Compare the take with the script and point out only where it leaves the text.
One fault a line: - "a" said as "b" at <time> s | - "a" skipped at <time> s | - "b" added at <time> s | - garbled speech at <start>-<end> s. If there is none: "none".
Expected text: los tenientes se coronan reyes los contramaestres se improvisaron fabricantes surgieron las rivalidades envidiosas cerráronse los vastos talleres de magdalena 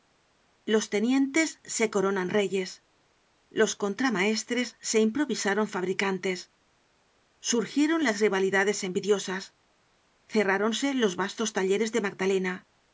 none